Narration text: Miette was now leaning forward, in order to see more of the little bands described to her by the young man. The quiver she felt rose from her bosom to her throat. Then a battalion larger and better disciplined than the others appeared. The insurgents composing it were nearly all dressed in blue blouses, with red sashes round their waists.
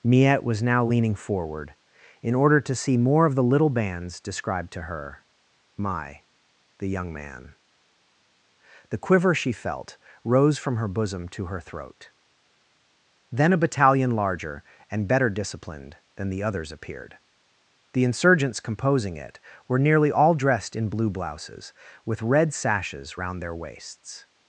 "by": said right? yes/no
no